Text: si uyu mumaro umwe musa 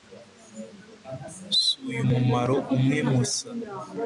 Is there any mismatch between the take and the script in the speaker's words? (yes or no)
no